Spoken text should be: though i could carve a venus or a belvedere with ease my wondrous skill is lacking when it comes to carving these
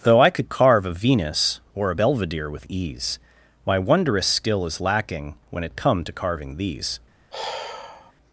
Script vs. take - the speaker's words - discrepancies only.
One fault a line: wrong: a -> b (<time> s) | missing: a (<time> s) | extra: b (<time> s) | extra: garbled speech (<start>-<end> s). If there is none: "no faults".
wrong: comes -> come (5.7 s)